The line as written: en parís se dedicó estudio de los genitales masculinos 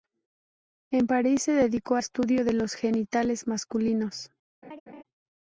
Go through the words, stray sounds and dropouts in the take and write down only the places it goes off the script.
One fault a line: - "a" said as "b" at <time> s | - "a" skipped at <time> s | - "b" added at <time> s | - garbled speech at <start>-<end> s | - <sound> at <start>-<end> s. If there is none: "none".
- laugh at 4.6-5.0 s